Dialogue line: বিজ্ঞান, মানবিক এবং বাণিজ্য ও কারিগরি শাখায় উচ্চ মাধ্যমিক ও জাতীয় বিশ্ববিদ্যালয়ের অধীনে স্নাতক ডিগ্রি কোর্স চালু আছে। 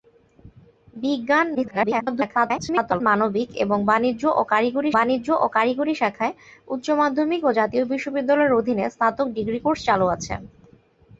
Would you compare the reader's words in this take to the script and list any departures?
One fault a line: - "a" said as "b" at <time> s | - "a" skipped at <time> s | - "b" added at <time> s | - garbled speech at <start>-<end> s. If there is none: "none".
- garbled speech at 1.5-3.0 s
- "বাণিজ্য ও কারিগরি" added at 5.0 s